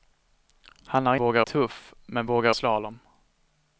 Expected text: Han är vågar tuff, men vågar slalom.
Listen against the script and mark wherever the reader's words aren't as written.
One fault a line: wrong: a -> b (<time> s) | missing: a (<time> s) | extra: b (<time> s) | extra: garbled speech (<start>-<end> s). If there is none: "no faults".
no faults